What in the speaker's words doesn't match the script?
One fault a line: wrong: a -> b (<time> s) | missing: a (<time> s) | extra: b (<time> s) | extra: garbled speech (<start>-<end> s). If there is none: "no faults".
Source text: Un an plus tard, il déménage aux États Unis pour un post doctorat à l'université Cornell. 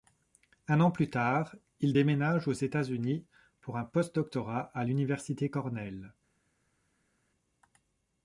no faults